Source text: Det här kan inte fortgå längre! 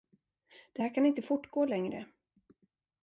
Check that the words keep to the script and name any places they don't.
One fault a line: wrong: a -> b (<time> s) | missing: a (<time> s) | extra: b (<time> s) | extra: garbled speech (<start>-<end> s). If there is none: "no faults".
no faults